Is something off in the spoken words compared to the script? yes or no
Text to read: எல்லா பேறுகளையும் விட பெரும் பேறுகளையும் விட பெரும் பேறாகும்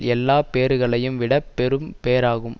yes